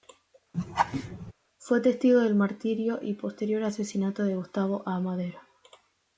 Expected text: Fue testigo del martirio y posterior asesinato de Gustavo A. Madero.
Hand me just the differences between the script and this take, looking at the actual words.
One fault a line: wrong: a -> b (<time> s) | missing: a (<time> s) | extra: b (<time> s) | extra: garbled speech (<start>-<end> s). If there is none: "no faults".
no faults